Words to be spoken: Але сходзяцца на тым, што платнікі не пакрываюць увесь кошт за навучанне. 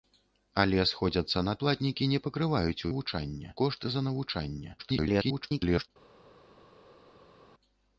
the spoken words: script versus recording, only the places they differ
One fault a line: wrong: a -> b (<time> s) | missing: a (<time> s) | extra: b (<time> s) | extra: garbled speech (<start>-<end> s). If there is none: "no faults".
missing: тым што (1.5 s)
wrong: увесь -> навучанне (2.9 s)
extra: garbled speech (4.8-5.9 s)